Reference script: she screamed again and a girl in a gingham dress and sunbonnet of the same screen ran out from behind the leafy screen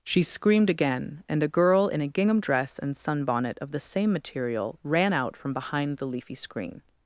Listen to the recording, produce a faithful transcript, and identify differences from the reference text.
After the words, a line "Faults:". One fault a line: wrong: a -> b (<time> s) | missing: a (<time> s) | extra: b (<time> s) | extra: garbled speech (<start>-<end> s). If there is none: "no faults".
she screamed again and a girl in a gingham dress and sunbonnet of the same material ran out from behind the leafy screen
Faults:
wrong: screen -> material (4.1 s)